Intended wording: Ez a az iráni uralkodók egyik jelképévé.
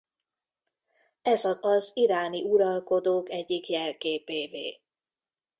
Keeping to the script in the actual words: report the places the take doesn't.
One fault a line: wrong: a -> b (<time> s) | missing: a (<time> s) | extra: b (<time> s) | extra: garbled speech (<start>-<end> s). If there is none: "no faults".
no faults